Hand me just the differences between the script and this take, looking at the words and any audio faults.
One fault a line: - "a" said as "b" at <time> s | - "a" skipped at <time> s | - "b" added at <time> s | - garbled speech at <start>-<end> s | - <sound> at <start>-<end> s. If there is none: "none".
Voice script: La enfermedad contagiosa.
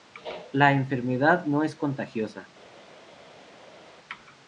- "no es" added at 1.4 s